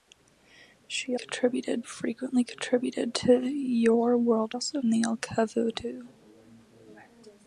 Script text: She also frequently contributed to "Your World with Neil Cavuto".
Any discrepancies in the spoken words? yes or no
yes